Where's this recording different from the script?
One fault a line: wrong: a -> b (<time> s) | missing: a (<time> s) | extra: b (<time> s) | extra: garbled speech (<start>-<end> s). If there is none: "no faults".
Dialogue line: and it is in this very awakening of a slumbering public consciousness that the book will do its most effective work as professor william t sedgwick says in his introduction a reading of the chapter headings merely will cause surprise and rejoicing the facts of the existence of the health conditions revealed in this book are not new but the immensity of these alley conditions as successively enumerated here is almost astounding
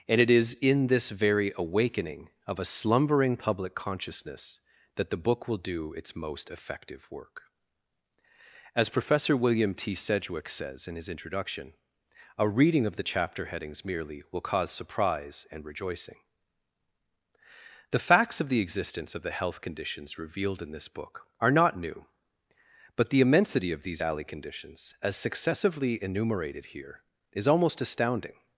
no faults